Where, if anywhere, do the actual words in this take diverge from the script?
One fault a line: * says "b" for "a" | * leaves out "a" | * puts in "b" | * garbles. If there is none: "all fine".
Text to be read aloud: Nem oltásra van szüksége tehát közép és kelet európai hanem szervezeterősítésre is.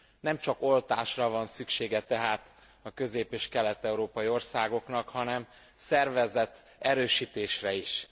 * puts in "csak"
* puts in "a"
* puts in "országoknak"